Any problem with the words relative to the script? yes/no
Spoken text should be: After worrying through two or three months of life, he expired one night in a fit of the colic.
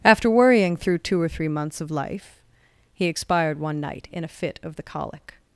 no